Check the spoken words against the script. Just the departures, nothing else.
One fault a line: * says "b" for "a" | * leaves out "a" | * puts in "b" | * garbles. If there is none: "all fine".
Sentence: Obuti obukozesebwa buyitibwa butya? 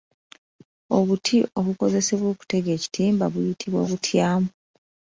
* puts in "okutega ekitimba"